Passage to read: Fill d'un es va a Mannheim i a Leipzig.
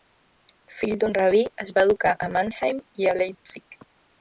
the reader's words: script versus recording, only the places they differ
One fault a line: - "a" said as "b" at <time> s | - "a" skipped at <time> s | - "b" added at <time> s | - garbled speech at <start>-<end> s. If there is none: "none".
- "rabí" added at 1.2 s
- "educar" added at 1.9 s